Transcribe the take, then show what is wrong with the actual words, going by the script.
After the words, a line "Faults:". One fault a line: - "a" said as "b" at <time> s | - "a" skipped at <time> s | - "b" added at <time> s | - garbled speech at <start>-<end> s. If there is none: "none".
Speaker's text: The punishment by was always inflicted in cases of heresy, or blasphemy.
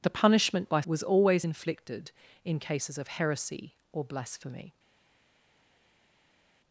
The punishment by was always inflicted in cases of heresy, or blasphemy.
Faults:
none